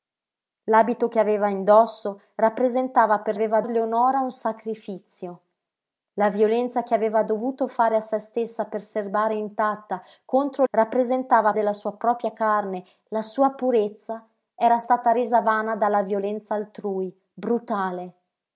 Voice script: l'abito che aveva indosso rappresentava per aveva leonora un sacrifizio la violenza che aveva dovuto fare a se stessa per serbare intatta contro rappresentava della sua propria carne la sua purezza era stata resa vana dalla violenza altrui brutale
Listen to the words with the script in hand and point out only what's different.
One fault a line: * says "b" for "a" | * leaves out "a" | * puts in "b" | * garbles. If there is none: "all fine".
all fine